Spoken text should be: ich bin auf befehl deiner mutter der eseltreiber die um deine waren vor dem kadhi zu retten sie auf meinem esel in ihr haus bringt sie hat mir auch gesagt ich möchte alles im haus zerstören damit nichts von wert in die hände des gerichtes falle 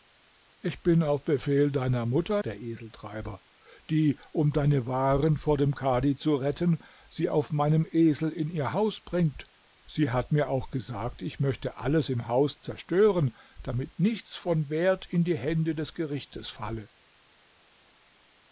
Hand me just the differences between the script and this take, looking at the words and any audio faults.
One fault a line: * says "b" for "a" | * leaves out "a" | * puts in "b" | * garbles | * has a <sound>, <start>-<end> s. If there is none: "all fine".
all fine